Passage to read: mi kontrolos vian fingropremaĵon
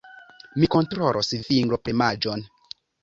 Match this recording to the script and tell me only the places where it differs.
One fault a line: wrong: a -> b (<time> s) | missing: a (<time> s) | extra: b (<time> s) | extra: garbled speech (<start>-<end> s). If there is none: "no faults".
missing: vian (1.3 s)